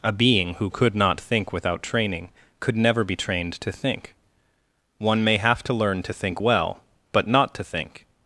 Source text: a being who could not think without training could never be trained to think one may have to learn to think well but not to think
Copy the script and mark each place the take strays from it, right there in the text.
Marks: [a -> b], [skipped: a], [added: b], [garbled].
a being who could not think without training could never be trained to think one may have to learn to think well but not to think